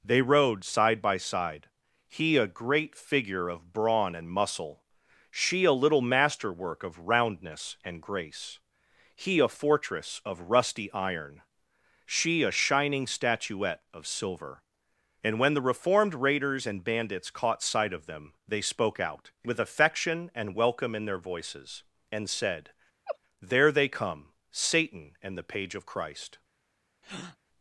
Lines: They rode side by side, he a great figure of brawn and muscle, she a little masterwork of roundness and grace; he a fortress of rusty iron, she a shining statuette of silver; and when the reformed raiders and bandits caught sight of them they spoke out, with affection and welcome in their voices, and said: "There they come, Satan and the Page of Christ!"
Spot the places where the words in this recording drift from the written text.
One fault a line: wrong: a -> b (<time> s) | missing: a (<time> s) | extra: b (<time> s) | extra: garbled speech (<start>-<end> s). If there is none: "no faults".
no faults